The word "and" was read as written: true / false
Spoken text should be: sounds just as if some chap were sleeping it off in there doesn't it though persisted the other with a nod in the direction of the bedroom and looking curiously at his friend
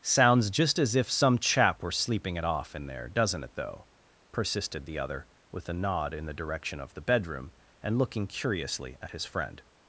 true